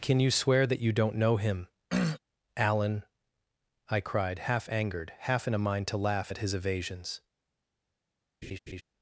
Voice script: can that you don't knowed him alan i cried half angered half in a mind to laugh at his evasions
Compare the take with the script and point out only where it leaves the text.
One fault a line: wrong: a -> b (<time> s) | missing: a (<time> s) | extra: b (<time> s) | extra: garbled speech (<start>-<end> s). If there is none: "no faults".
extra: you swear (0.2 s)
wrong: knowed -> know (1.1 s)